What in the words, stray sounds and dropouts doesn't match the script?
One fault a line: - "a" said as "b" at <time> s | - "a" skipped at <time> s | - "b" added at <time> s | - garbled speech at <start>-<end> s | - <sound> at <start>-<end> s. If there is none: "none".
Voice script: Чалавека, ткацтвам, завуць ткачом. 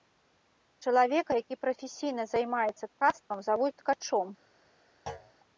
- "які прафесійна займаецца" added at 1.4 s
- thud at 5.1-5.3 s